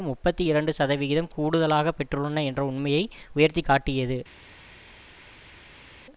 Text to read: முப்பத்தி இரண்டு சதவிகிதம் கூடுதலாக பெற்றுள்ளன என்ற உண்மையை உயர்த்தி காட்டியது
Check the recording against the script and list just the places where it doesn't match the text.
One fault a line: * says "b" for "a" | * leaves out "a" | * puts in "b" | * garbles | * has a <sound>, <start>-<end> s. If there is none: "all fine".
all fine